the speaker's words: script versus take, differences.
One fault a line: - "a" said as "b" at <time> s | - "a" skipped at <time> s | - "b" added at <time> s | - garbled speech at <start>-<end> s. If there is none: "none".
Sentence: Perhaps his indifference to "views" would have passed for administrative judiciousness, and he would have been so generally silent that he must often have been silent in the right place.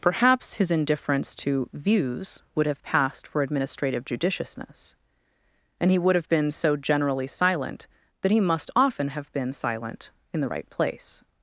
none